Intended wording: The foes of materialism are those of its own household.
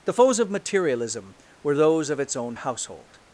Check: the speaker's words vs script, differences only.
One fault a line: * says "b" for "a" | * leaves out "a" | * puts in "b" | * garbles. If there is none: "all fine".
* says "were" for "are"